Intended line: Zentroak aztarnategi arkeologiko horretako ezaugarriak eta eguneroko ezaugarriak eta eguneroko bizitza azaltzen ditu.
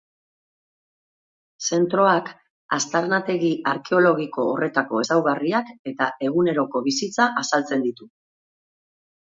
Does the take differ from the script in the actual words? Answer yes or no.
yes